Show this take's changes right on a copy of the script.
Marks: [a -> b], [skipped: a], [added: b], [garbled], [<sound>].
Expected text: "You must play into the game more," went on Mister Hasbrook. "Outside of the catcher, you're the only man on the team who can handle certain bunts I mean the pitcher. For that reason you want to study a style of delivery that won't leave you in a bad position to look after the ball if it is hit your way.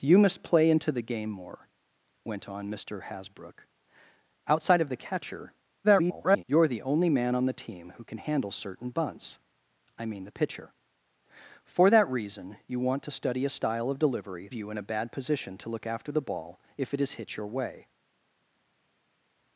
"You must play into the game more," went on Mister Hasbrook. "Outside of the catcher, [garbled] you're the only man on the team who can handle certain bunts I mean the pitcher. For that reason you want to study a style of delivery [skipped: that won't leave] you in a bad position to look after the ball if it is hit your way.